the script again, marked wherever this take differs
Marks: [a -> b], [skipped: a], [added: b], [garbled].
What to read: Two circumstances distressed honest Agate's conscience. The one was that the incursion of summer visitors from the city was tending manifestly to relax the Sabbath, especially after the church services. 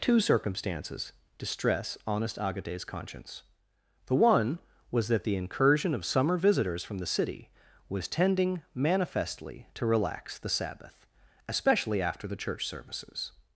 Two circumstances [distressed -> distress] honest Agate's conscience. The one was that the incursion of summer visitors from the city was tending manifestly to relax the Sabbath, especially after the church services.